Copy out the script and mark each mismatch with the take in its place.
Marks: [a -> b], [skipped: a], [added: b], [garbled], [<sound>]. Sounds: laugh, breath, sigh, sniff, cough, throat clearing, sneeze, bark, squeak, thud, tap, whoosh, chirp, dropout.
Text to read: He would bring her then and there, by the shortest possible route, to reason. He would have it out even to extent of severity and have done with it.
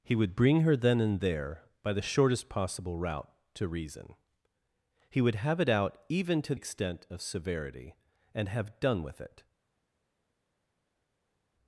He would bring her then and there, by the shortest possible route, to reason. He would have it out even to extent of severity and have done with it.